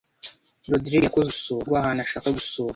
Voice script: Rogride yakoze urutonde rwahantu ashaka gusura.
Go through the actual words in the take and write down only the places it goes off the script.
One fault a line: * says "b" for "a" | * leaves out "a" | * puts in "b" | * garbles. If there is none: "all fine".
* says "gusura" for "urutonde"